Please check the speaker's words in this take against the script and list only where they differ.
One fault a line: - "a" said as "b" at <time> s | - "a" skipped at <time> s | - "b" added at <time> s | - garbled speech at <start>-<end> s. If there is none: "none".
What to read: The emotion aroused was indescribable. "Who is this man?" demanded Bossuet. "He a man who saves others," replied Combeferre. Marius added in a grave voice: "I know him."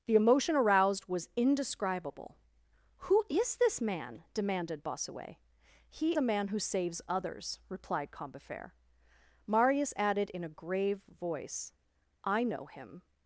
none